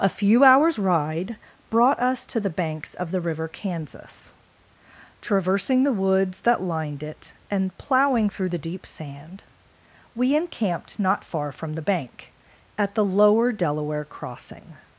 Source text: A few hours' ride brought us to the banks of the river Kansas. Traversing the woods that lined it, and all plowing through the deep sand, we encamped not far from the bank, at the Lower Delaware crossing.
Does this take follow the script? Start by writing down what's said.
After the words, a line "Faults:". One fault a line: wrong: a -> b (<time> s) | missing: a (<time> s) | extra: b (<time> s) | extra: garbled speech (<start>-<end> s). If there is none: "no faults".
A few hours' ride brought us to the banks of the river Kansas. Traversing the woods that lined it, and plowing through the deep sand, we encamped not far from the bank, at the Lower Delaware crossing.
Faults:
missing: all (7.8 s)